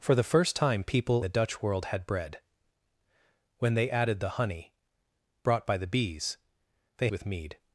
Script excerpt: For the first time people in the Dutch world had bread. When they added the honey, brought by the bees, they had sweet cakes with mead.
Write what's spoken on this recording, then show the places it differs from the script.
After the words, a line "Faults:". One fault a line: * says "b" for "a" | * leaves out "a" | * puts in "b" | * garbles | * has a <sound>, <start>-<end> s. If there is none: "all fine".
For the first time people the Dutch world had bread. When they added the honey, brought by the bees, they with mead.
Faults:
* leaves out "in"
* leaves out "had sweet cakes"